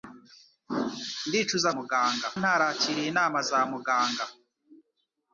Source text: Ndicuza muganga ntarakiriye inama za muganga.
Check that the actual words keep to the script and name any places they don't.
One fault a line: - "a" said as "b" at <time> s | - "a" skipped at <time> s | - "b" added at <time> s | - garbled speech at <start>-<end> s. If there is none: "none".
none